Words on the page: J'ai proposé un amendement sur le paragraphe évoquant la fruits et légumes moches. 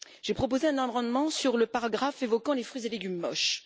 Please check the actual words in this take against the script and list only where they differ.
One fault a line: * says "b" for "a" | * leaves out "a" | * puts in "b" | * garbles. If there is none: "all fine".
* says "les" for "la"